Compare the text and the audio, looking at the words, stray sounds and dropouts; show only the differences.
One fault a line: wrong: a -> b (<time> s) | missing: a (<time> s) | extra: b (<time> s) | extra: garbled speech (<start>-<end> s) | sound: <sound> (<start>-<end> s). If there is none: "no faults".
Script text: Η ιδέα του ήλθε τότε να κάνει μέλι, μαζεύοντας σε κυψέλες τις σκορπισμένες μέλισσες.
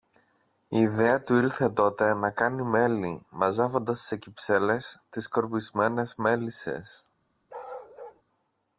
sound: bark (7.5-8.2 s)